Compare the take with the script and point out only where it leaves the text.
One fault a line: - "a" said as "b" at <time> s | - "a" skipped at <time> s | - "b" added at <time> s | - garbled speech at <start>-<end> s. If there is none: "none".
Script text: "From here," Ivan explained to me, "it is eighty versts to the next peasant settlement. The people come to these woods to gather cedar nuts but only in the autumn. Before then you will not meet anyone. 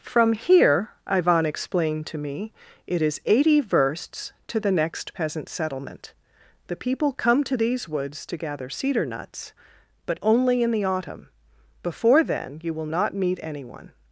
none